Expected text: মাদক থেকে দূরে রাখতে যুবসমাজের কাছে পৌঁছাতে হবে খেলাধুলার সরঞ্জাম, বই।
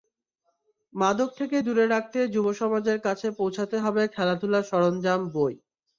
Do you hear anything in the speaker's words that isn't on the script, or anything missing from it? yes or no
no